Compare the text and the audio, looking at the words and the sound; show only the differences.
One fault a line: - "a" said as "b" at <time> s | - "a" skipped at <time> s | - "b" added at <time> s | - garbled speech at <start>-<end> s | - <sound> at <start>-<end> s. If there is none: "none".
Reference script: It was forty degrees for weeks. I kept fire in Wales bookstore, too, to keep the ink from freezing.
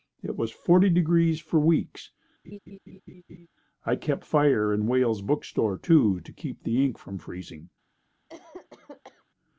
- laugh at 2.4-3.5 s
- cough at 8.3-9.3 s